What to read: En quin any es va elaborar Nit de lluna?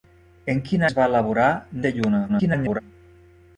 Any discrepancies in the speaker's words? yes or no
yes